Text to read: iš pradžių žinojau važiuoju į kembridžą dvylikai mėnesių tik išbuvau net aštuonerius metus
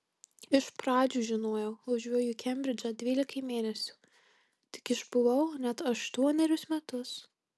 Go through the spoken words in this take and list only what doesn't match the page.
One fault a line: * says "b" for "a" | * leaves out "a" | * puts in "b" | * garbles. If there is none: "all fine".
all fine